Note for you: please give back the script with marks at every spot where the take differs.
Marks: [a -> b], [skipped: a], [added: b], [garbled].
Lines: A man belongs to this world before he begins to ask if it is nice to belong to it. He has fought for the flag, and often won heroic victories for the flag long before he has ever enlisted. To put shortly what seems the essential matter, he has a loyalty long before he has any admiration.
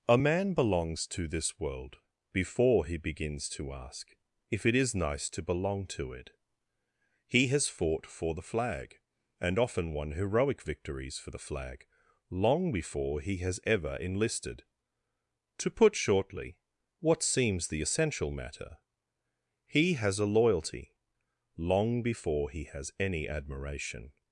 A man belongs to this world before he begins to ask if it is nice to belong to it. He has fought for the flag, and often won heroic victories for the flag long before he has ever enlisted. To put shortly what seems the essential matter, he has a loyalty long before he has any admiration.